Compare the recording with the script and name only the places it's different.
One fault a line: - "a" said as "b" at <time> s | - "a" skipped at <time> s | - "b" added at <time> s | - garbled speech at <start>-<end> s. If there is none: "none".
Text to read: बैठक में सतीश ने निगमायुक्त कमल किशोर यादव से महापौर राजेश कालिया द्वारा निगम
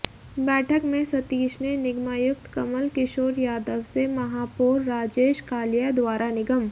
none